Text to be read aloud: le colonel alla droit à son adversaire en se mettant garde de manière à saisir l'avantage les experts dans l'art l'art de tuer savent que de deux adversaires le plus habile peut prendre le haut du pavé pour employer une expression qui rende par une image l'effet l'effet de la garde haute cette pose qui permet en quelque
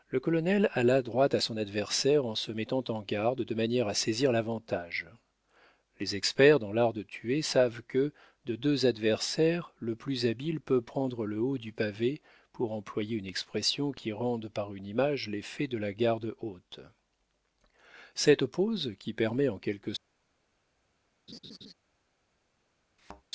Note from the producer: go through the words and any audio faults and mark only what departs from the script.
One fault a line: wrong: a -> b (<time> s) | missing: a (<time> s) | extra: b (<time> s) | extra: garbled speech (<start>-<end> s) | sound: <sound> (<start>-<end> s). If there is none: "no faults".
extra: en (2.9 s)
missing: l'art (6.9 s)
missing: l'effet (15.7 s)
sound: laugh (21.3-21.7 s)
sound: thud (23.0-23.2 s)